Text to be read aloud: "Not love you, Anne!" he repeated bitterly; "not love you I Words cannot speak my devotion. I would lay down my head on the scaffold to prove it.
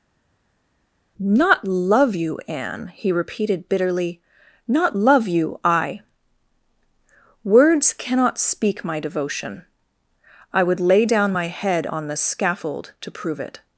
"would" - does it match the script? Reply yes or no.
yes